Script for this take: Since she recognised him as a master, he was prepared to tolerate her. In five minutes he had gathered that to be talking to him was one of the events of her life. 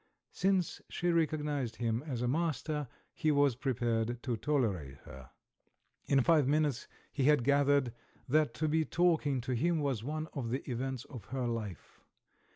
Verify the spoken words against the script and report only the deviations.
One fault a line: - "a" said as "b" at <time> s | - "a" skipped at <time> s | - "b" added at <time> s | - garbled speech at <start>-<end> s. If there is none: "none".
none